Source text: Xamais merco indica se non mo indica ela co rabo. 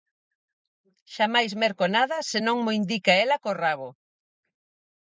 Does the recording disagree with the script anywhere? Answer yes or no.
yes